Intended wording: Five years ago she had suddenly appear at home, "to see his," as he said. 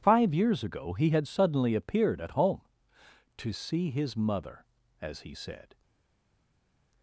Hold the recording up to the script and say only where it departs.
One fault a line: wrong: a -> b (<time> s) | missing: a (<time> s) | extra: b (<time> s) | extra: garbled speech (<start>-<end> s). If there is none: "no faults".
wrong: she -> he (0.9 s)
wrong: appear -> appeared (1.8 s)
extra: mother (4.2 s)